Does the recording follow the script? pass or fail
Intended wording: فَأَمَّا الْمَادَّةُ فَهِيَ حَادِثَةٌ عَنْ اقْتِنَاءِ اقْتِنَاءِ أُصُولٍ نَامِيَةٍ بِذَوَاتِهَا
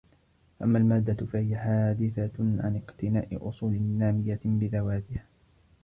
fail